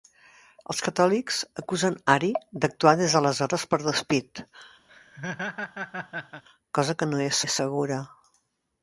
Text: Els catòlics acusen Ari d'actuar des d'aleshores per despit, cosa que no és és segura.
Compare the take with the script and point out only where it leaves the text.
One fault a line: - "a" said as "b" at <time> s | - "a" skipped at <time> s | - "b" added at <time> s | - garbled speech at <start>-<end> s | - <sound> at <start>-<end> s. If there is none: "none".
- laugh at 4.9-6.4 s